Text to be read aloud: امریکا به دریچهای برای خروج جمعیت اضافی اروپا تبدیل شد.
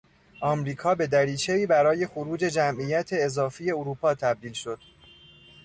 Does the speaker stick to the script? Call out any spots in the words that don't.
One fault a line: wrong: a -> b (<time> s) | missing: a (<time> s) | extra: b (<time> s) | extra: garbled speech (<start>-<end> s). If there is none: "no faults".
no faults